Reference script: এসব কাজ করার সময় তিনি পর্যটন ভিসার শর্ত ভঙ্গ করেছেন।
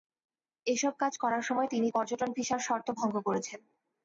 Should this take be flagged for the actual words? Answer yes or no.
no